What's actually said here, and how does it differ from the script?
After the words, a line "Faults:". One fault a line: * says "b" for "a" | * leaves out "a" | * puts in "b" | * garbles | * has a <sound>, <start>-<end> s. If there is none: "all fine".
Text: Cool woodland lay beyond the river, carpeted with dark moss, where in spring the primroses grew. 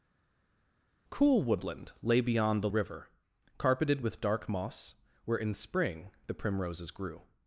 Cool woodland lay beyond the river, carpeted with dark moss, where in spring the primroses grew.
Faults:
all fine